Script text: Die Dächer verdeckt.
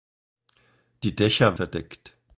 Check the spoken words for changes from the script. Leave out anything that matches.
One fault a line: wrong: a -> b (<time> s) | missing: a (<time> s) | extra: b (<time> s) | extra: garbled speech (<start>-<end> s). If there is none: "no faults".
no faults